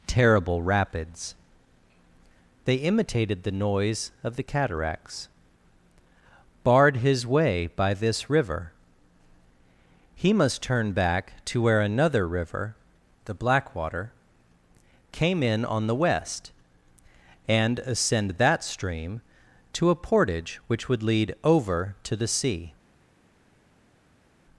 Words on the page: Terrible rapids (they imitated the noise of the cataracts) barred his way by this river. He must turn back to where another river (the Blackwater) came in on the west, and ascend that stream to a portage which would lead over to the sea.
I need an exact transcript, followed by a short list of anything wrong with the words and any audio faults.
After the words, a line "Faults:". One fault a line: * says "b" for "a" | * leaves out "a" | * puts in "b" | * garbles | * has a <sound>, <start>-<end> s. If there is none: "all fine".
Terrible rapids (they imitated the noise of the cataracts) barred his way by this river. He must turn back to where another river (the Blackwater) came in on the west, and ascend that stream to a portage which would lead over to the sea.
Faults:
all fine